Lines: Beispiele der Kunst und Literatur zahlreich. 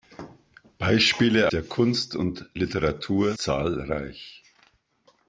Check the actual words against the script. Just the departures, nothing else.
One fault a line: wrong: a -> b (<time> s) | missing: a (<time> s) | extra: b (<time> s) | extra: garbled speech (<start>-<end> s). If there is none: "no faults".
no faults